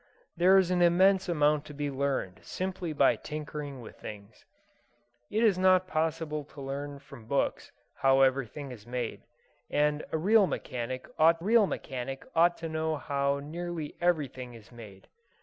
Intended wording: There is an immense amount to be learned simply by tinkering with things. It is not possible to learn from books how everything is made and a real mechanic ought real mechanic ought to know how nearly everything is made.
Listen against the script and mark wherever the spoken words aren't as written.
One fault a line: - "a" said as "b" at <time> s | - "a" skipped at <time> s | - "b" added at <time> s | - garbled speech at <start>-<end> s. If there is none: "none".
none